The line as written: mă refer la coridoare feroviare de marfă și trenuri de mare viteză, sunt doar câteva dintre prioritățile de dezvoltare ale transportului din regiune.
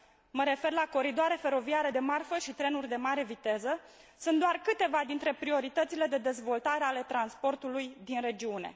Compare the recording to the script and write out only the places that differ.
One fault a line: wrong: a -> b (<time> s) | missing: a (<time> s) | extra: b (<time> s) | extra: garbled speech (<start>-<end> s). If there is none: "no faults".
no faults